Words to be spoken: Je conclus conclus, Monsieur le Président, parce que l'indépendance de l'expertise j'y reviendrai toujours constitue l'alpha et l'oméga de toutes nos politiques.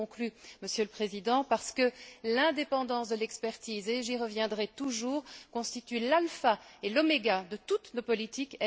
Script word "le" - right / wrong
right